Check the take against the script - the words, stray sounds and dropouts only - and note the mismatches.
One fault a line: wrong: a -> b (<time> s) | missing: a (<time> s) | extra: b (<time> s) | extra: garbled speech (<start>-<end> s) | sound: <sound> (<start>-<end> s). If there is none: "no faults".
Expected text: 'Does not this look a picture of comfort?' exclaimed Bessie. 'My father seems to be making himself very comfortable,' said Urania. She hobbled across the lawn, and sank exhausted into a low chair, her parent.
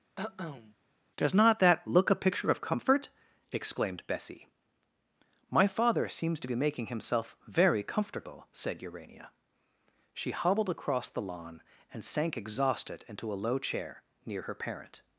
sound: cough (0.2-0.8 s)
wrong: this -> that (1.6 s)
extra: near (14.2 s)